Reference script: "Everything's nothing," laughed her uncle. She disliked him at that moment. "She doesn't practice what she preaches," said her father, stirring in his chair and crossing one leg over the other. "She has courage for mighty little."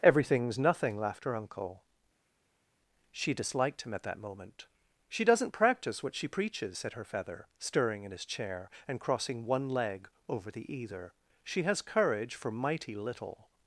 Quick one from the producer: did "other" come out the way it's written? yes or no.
no